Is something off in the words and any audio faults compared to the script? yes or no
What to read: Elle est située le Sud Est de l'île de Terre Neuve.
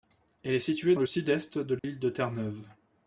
yes